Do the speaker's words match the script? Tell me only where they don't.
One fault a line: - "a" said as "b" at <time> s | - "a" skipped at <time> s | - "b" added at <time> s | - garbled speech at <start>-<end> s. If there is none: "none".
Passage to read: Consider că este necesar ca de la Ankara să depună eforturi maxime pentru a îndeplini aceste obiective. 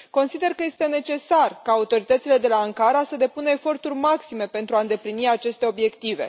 - "autoritățile" added at 1.7 s